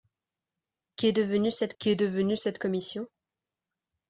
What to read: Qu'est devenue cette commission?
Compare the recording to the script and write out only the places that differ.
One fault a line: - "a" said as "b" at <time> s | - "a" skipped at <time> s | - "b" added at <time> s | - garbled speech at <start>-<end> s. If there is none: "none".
- "qu'est devenue cette" added at 1.8 s